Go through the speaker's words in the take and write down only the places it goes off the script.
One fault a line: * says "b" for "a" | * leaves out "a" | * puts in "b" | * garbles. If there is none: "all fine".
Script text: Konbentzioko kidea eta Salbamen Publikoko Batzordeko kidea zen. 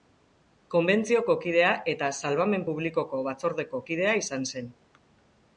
* puts in "izan"